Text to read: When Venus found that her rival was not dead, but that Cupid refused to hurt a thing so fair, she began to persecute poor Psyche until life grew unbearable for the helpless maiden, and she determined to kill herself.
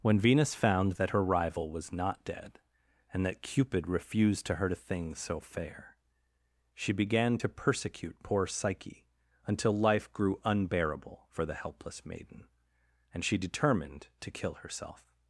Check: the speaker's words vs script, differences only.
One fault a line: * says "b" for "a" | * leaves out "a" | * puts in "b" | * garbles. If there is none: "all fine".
* says "and" for "but"